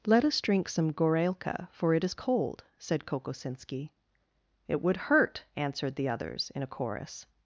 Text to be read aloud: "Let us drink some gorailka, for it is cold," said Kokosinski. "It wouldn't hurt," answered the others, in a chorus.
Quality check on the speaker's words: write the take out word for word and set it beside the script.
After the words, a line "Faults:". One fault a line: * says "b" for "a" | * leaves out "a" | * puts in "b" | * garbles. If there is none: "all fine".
"Let us drink some gorailka, for it is cold," said Kokosinski. "It would hurt," answered the others, in a chorus.
Faults:
* says "would" for "wouldn't"